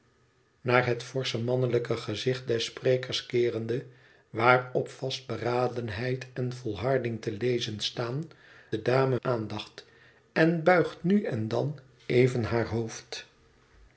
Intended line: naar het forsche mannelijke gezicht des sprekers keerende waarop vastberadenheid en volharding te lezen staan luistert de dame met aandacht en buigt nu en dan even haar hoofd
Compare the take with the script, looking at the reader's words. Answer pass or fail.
fail